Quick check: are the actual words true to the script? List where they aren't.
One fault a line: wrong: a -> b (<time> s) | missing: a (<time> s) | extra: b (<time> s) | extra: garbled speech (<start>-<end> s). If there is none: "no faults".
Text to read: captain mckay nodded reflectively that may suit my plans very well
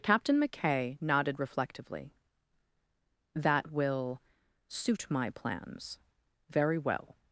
wrong: may -> will (3.7 s)